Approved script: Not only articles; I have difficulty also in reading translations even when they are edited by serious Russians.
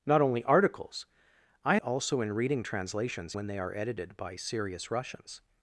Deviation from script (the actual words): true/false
true